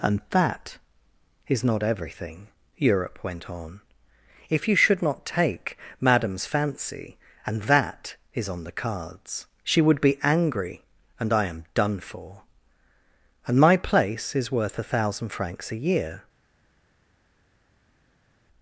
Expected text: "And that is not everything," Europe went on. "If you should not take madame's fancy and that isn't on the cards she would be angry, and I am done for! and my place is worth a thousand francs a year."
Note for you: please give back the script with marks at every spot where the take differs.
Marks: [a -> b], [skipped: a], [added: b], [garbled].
"And that is not everything," Europe went on. "If you should not take madame's fancy and that [isn't -> is] on the cards she would be angry, and I am done for! and my place is worth a thousand francs a year."